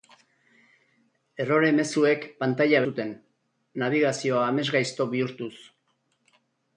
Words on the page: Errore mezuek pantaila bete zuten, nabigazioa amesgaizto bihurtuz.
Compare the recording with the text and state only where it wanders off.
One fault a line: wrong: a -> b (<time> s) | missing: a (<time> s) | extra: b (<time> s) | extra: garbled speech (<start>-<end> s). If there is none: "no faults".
missing: bete (2.8 s)